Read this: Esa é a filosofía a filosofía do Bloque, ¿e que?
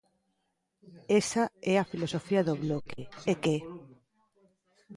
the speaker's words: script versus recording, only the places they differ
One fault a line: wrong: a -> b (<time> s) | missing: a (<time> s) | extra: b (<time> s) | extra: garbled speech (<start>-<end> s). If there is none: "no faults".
missing: a filosofía (2.4 s)